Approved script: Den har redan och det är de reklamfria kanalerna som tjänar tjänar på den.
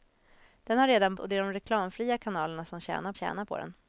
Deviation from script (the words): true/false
false